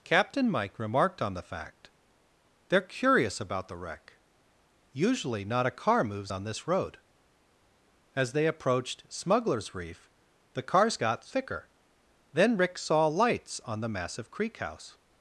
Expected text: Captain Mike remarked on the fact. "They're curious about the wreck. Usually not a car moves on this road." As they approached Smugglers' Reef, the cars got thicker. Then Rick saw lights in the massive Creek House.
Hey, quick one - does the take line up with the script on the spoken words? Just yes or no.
no